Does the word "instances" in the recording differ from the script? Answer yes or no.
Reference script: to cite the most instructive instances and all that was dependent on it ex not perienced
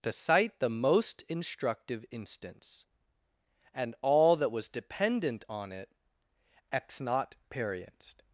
yes